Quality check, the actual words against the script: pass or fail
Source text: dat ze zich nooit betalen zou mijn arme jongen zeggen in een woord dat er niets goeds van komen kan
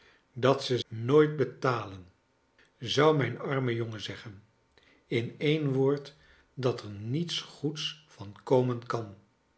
fail